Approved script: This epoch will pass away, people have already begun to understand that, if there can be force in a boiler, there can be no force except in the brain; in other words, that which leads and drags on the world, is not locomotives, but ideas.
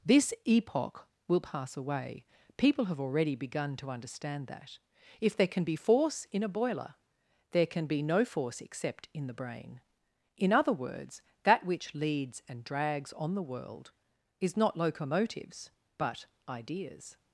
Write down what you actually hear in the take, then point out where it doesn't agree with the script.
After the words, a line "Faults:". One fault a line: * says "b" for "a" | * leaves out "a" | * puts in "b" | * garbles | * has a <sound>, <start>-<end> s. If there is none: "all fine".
This epoch will pass away, people have already begun to understand that, if there can be force in a boiler, there can be no force except in the brain; in other words, that which leads and drags on the world, is not locomotives, but ideas.
Faults:
all fine